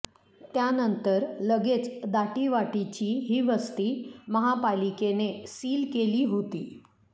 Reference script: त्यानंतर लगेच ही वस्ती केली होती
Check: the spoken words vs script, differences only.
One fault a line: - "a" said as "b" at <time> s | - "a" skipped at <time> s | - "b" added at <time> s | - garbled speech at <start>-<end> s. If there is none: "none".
- "दाटीवाटीची" added at 2.1 s
- "महापालिकेने सील" added at 4.3 s